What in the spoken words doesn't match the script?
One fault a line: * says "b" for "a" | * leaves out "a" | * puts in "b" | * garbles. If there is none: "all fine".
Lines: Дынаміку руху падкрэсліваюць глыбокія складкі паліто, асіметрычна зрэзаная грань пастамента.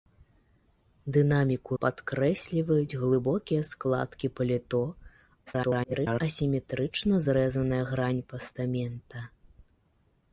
* leaves out "руху"
* garbles